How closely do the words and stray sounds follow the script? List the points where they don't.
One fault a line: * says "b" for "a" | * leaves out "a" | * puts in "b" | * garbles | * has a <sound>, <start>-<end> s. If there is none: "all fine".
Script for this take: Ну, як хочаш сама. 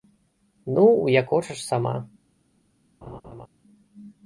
* has a laugh, 3.0-3.5 s